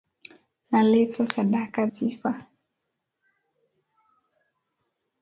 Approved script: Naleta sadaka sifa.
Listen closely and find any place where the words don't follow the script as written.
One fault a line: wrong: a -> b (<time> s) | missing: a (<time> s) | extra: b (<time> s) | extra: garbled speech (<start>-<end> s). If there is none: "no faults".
no faults